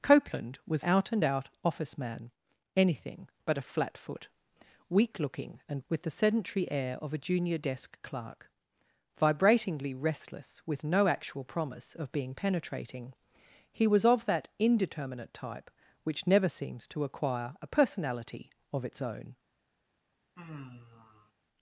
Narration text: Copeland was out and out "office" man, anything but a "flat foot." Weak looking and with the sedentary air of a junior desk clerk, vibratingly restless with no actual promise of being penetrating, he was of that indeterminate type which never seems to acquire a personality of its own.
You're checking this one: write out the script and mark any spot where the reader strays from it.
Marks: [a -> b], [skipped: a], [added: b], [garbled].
Copeland was out and out "office" man, anything but a "flat foot." Weak looking and with the sedentary air of a junior desk clerk, vibratingly restless with no actual promise of being penetrating, he was of that indeterminate type which never seems to acquire a personality of its own.